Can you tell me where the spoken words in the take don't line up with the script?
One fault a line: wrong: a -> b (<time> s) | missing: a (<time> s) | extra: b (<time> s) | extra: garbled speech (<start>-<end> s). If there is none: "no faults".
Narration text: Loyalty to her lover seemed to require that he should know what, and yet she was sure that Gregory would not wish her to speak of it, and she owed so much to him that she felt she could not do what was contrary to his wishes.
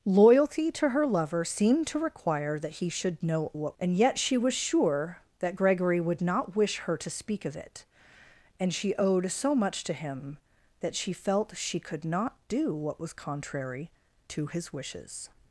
no faults